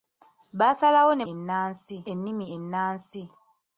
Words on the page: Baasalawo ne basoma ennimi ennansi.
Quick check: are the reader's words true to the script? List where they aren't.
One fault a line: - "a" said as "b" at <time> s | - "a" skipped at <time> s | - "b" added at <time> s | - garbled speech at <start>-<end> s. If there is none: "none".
- "basoma" said as "ennansi" at 1.3 s